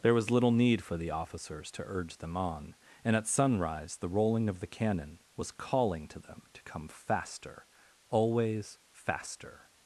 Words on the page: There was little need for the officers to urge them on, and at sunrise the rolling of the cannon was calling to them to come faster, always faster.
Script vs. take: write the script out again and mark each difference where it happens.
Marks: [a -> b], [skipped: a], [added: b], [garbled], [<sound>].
There was little need for the officers to urge them on, and at sunrise the rolling of the cannon was calling to them to come faster, always faster.